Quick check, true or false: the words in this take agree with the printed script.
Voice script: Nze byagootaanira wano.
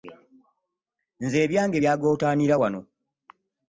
false